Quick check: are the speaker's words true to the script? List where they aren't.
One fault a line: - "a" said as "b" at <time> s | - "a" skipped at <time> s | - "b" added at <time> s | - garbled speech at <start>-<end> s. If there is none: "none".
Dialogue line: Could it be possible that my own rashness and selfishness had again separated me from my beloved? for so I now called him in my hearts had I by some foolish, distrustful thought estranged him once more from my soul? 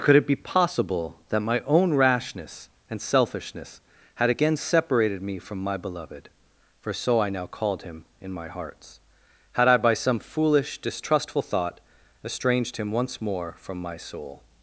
none